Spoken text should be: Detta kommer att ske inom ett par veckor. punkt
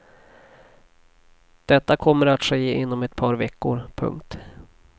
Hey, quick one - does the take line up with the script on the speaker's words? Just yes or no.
yes